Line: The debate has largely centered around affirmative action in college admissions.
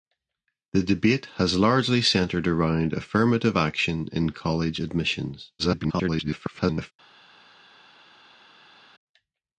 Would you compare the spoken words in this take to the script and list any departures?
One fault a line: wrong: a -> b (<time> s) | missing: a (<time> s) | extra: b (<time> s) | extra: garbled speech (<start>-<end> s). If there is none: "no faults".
extra: garbled speech (5.6-6.9 s)